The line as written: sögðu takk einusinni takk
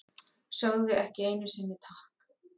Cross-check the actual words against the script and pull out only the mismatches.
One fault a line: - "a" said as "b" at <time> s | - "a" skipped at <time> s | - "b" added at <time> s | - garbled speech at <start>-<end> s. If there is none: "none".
- "takk" said as "ekki" at 1.0 s